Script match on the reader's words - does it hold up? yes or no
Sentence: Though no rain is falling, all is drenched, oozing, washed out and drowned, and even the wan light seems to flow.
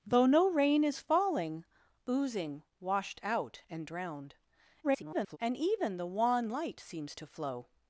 no